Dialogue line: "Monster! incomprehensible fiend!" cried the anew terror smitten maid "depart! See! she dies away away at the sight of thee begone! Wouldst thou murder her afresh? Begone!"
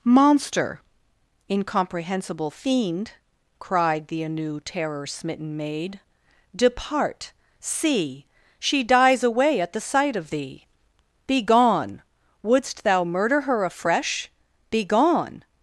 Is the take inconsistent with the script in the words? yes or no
yes